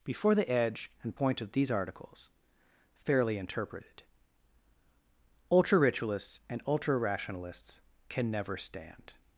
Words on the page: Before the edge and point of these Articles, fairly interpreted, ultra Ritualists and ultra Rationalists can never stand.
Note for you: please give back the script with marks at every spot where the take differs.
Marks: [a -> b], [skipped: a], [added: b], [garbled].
Before the edge and point of these Articles, fairly interpreted, ultra Ritualists and ultra Rationalists can never stand.